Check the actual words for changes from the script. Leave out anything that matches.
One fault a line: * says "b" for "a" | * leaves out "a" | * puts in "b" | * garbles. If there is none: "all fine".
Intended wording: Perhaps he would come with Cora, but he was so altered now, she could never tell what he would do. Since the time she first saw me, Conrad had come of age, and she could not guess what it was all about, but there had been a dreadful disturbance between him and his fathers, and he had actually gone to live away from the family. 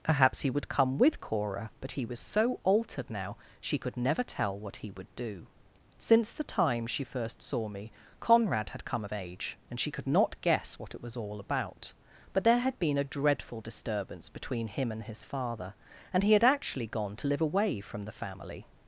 * says "father" for "fathers"